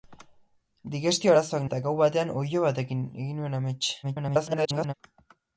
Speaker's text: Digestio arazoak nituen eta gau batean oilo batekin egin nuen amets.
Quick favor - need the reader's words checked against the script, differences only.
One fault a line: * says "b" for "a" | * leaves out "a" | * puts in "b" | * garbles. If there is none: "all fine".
* leaves out "nituen"
* garbles